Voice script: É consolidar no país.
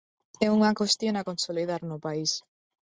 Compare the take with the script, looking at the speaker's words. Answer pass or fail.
fail